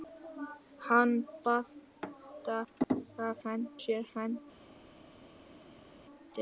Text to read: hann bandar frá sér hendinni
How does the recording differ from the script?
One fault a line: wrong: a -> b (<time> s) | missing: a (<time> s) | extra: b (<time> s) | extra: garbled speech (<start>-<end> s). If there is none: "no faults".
wrong: frá -> hendinni (3.4 s)